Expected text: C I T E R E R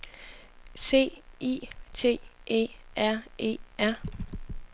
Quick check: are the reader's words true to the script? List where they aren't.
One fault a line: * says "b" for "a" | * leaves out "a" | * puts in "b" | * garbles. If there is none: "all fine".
all fine